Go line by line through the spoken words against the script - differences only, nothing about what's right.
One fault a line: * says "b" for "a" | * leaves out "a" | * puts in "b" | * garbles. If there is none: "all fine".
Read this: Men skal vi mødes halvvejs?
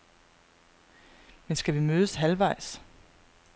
all fine